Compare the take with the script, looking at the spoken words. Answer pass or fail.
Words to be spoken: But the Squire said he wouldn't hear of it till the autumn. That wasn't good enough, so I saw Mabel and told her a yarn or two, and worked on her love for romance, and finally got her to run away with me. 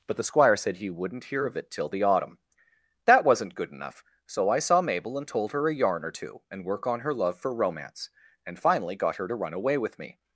fail